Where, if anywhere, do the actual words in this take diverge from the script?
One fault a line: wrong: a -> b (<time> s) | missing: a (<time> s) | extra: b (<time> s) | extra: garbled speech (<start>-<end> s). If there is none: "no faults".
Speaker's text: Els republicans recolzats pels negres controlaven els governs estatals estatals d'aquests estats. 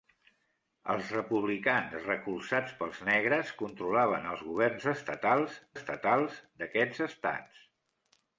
no faults